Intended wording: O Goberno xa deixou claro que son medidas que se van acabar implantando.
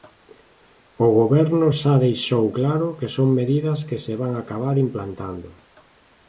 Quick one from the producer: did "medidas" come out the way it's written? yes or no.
yes